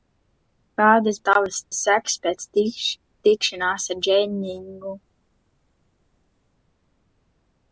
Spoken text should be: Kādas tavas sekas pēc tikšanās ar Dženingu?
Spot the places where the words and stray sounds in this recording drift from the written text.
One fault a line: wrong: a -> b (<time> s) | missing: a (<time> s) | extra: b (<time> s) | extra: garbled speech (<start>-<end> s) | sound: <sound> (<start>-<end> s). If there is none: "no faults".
no faults